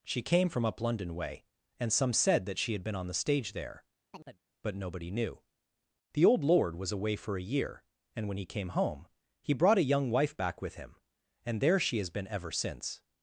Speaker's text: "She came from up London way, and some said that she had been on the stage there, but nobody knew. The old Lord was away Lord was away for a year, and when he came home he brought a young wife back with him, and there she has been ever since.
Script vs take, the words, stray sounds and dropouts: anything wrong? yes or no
yes